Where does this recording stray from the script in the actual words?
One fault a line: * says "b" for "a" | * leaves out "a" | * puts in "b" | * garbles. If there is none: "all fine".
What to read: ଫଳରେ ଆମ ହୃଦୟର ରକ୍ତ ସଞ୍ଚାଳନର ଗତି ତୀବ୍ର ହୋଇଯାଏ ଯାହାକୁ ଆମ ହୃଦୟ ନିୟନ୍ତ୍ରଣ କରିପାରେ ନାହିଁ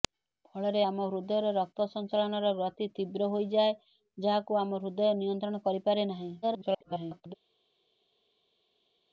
* garbles